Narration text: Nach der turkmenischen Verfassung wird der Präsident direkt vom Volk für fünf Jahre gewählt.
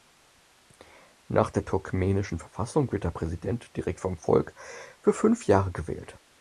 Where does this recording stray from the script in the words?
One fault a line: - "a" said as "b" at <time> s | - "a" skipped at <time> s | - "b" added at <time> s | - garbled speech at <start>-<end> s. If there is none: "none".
none